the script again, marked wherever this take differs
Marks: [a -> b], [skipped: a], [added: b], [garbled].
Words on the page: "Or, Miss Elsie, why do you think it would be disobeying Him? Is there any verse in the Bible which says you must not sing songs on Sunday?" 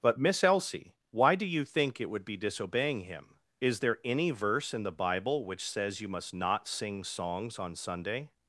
["Or, -> But] Miss Elsie, why do you think it would be disobeying Him? Is there any verse in the Bible which says you must not sing songs on Sunday?"